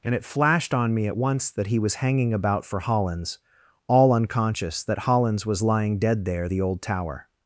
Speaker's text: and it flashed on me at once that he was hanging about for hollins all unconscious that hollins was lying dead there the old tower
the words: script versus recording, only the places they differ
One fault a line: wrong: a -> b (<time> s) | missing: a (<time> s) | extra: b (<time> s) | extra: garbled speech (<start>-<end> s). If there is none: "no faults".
no faults